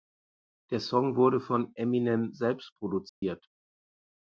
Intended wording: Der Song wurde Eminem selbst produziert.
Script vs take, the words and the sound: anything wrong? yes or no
yes